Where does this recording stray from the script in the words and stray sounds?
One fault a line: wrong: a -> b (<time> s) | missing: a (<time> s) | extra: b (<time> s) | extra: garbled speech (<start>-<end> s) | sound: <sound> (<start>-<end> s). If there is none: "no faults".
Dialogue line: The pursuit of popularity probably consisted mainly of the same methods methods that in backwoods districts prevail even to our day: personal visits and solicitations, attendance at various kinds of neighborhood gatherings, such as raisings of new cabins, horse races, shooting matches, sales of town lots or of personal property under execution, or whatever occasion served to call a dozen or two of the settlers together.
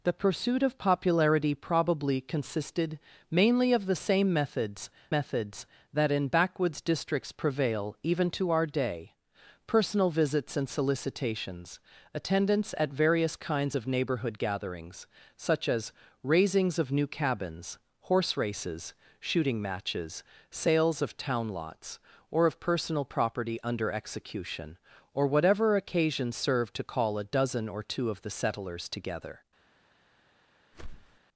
sound: whoosh (30.7-31.2 s)